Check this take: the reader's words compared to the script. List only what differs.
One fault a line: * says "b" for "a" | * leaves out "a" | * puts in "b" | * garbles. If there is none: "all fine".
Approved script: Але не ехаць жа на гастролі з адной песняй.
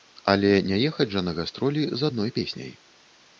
all fine